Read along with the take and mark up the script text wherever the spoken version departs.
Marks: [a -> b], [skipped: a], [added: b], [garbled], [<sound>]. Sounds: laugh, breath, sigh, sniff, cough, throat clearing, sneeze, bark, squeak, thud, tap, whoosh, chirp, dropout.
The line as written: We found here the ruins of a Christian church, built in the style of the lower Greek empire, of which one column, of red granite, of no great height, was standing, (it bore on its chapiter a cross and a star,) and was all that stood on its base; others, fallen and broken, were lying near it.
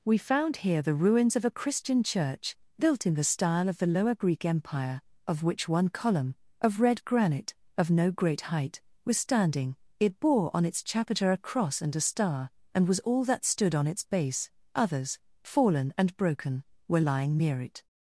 We found here the ruins of a Christian church, built in the style of the lower Greek empire, of which one column, of red granite, of no great height, was standing, (it bore on its chapiter a cross and a star,) and was all that stood on its base; others, fallen and broken, were lying near it.